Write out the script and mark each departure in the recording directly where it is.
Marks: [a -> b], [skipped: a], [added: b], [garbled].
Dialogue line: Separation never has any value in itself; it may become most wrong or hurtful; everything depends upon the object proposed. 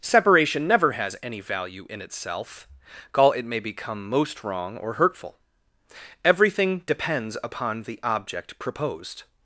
Separation never has any value in itself; [added: call] it may become most wrong or hurtful; everything depends upon the object proposed.